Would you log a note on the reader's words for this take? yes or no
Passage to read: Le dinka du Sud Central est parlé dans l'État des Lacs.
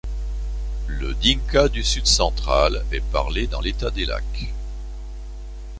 no